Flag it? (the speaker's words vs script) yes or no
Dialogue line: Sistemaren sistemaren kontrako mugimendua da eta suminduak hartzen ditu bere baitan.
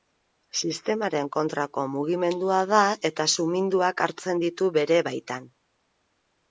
yes